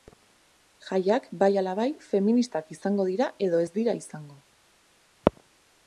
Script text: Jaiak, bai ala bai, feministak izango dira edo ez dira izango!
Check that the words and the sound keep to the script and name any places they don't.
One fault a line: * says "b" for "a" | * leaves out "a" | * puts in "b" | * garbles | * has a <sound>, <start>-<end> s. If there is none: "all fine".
all fine